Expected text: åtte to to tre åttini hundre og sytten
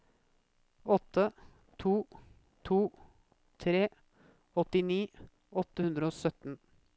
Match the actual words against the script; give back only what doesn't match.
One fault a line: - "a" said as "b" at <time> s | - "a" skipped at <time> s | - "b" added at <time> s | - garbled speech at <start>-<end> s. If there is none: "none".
- "åtte" added at 5.6 s